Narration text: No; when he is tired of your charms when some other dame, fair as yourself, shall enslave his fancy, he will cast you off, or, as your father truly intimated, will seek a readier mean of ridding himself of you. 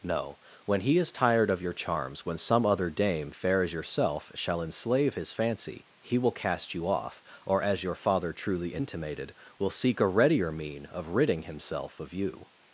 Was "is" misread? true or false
false